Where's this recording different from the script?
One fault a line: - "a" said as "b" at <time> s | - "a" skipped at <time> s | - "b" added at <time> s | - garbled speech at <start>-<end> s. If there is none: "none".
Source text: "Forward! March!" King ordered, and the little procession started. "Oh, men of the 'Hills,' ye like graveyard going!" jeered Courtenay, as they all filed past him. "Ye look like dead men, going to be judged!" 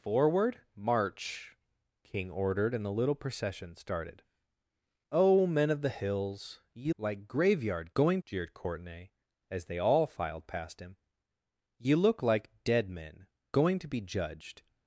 none